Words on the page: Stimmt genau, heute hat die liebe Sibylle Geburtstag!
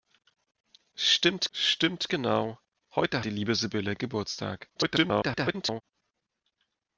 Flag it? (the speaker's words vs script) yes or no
yes